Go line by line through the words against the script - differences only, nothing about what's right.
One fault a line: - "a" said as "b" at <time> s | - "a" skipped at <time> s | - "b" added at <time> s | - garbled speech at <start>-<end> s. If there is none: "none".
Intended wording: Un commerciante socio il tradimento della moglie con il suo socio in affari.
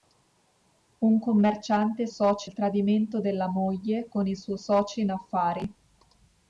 none